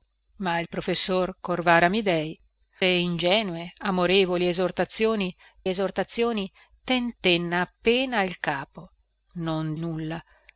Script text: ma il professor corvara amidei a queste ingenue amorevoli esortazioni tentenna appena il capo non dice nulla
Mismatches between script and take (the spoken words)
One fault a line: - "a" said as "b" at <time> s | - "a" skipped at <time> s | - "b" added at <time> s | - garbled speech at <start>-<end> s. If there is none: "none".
- "a queste" skipped at 2.4 s
- "esortazioni" added at 5.7 s
- "dice" skipped at 9.7 s